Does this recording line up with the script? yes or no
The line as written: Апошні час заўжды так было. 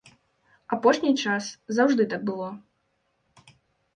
yes